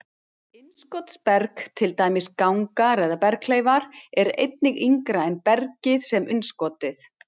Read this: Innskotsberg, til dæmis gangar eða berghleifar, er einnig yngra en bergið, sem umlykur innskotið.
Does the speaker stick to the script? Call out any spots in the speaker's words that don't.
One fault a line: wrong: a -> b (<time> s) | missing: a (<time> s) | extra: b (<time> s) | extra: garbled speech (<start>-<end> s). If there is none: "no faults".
missing: umlykur (6.3 s)